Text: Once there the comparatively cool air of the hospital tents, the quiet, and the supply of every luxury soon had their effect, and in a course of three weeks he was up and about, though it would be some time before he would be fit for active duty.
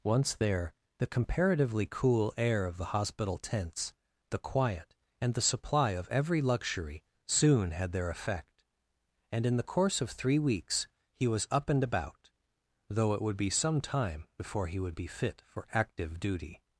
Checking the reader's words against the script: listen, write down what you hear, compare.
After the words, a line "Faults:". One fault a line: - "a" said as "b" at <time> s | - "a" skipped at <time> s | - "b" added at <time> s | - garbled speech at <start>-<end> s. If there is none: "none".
Once there the comparatively cool air of the hospital tents, the quiet, and the supply of every luxury soon had their effect, and in the course of three weeks he was up and about, though it would be some time before he would be fit for active duty.
Faults:
- "a" said as "the" at 9.6 s